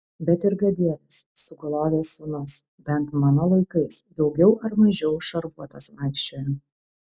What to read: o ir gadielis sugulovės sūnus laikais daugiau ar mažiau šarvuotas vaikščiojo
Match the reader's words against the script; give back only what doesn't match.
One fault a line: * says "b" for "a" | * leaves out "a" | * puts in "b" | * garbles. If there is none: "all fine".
* says "bet" for "o"
* puts in "bent mano"